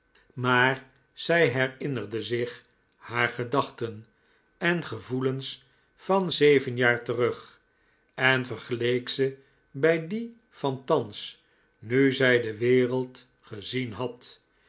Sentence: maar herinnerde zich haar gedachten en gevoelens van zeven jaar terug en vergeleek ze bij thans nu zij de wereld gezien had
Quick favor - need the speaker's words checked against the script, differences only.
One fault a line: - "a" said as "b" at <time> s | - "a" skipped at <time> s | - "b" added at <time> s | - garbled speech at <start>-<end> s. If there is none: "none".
- "zij" added at 1.1 s
- "die van" added at 10.1 s